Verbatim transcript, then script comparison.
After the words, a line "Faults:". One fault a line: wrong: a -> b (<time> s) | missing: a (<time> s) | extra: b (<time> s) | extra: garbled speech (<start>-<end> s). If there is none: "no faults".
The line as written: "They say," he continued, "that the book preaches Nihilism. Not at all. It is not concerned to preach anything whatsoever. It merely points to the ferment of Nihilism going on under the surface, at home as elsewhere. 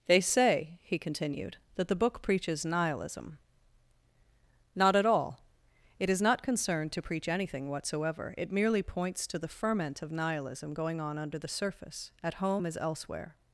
"They say," he continued, "that the book preaches Nihilism. Not at all. It is not concerned to preach anything whatsoever. It merely points to the ferment of Nihilism going on under the surface, at home as elsewhere.
Faults:
no faults